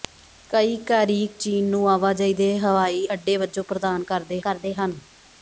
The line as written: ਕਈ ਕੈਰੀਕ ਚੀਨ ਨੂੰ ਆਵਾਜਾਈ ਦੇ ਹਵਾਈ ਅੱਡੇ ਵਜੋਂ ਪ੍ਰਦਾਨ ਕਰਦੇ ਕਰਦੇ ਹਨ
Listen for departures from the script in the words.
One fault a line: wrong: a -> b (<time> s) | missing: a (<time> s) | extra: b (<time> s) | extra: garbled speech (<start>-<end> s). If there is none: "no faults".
no faults